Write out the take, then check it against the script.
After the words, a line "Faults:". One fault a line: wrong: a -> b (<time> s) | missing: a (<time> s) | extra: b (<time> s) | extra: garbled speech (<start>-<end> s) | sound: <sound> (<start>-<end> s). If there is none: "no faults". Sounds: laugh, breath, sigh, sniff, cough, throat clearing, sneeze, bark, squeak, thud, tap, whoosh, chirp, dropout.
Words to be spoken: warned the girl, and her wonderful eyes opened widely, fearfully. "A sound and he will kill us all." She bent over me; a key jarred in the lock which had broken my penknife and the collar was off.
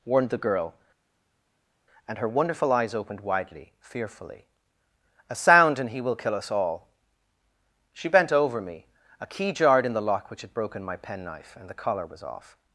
warned the girl, and her wonderful eyes opened widely, fearfully. "A sound and he will kill us all." She bent over me; a key jarred in the lock which had broken my penknife and the collar was off.
Faults:
no faults